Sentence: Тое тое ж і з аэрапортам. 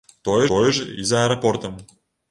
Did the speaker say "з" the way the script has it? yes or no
yes